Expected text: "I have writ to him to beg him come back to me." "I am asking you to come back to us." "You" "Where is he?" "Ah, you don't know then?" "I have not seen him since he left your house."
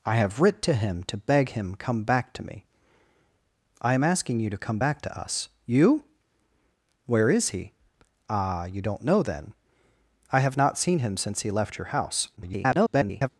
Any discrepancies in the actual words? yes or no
yes